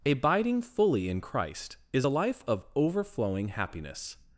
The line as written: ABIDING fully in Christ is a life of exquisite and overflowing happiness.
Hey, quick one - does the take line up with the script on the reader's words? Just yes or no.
no